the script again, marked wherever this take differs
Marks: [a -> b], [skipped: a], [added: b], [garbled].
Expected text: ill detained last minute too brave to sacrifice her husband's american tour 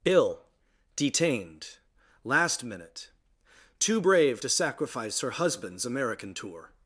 ill detained last minute too brave to sacrifice her husband's american tour